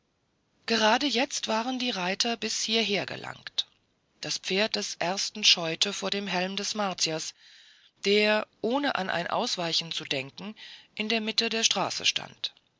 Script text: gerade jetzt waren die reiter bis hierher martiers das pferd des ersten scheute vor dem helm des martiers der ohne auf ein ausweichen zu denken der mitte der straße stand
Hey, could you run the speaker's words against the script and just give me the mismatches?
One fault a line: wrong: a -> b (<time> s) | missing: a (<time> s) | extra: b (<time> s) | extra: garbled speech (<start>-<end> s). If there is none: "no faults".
wrong: martiers -> gelangt (3.0 s)
wrong: auf -> an (8.9 s)
extra: in (10.9 s)